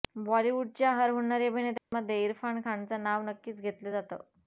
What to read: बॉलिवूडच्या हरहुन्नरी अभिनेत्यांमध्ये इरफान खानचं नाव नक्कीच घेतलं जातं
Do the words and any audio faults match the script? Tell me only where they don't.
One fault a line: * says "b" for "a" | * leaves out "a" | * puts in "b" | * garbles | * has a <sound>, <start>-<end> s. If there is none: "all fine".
* has a dropout, 1.8-1.9 s